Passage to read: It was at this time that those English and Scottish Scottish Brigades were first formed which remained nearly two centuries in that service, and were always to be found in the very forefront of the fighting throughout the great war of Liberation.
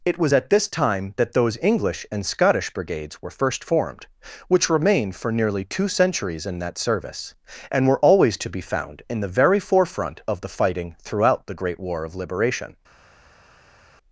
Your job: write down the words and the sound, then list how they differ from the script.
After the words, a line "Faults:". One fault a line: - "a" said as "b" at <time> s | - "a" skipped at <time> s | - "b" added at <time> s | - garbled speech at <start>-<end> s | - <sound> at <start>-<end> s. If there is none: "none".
It was at this time that those English and Scottish Brigades were first formed which remained for nearly two centuries in that service, and were always to be found in the very forefront of the fighting throughout the great war of Liberation.
Faults:
- "Scottish" skipped at 2.7 s
- "for" added at 5.1 s